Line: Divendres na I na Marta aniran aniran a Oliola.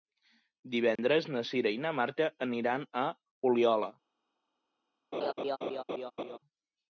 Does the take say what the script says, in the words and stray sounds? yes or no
no